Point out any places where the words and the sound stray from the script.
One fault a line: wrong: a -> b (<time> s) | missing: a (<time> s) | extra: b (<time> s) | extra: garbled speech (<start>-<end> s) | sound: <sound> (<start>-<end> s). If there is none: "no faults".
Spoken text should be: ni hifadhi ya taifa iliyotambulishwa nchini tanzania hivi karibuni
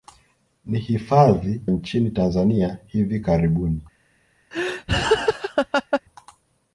missing: ya taifa iliyotambulishwa (1.6 s)
sound: laugh (4.5-6.0 s)